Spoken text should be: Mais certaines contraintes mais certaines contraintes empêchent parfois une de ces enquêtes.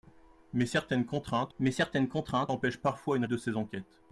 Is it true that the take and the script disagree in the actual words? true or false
false